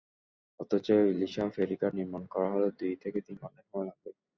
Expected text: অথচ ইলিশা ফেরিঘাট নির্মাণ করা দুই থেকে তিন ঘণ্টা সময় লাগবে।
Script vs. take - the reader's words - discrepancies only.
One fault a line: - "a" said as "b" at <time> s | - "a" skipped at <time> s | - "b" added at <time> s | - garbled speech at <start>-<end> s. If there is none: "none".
- "হলে" added at 2.5 s